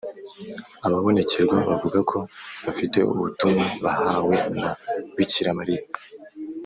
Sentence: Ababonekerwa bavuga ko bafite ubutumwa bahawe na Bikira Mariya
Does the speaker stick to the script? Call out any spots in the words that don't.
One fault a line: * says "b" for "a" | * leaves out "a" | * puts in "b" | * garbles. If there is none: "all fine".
all fine